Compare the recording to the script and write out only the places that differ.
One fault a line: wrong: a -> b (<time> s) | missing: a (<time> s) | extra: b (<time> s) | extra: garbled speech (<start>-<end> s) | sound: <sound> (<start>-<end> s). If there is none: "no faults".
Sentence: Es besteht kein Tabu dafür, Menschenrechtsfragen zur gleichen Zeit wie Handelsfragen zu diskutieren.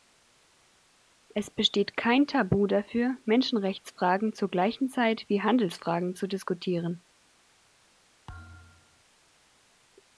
sound: thud (8.3-9.0 s)